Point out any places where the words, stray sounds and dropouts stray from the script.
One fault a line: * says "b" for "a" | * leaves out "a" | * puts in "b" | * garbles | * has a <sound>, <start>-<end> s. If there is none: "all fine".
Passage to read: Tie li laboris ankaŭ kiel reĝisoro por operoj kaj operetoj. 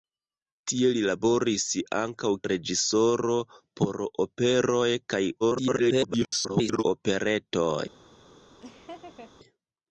* leaves out "kiel"
* garbles
* has a laugh, 8.6-9.3 s